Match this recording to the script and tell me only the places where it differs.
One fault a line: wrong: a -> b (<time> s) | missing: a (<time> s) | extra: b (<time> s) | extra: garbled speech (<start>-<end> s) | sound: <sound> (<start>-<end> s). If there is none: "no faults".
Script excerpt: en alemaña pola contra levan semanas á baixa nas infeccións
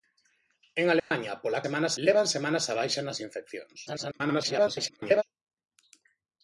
sound: dropout (1.0-1.1 s)
wrong: contra -> semanas (1.6 s)
extra: garbled speech (3.9-5.2 s)